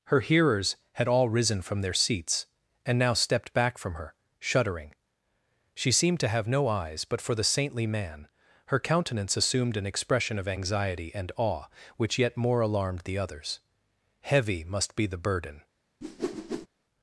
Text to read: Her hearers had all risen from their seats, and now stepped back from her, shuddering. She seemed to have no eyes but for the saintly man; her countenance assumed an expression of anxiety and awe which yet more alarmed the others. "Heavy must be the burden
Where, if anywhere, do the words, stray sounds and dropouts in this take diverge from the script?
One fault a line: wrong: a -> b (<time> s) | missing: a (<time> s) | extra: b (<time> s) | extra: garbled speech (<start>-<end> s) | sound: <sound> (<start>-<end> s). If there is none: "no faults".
sound: whoosh (16.0-16.7 s)